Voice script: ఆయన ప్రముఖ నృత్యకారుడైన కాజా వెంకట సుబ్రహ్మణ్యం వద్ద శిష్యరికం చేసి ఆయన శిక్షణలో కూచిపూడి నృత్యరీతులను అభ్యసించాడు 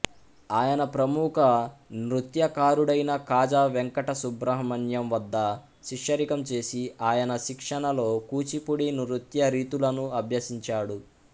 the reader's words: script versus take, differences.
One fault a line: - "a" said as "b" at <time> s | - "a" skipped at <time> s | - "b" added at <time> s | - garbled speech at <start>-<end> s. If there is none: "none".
none